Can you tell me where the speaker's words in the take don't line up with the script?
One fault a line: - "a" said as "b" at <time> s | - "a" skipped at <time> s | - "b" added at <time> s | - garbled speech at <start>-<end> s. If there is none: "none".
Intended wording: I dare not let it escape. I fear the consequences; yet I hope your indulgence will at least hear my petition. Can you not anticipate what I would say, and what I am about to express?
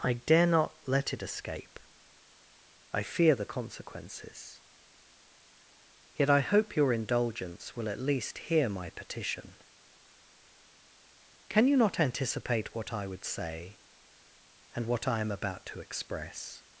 none